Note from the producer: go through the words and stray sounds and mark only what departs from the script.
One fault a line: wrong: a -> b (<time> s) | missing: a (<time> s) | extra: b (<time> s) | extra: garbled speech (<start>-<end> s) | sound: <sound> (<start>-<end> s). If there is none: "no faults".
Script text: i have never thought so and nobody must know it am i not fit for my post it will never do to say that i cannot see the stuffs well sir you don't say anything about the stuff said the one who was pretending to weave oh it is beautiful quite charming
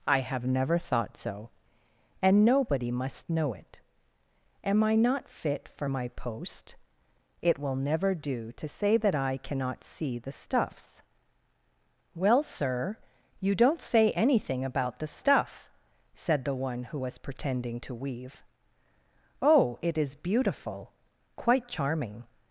no faults